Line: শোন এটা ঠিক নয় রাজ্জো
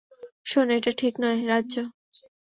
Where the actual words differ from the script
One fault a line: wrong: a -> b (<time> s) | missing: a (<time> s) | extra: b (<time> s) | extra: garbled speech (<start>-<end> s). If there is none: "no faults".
no faults